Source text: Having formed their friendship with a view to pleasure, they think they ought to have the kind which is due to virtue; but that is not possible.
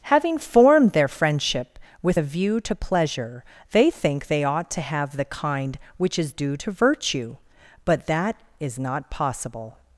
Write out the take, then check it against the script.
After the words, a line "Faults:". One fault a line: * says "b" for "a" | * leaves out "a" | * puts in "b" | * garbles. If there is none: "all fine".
Having formed their friendship with a view to pleasure, they think they ought to have the kind which is due to virtue; but that is not possible.
Faults:
all fine